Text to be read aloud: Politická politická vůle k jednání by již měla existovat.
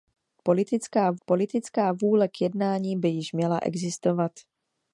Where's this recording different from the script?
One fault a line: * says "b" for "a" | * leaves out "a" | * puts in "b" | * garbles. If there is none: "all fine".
all fine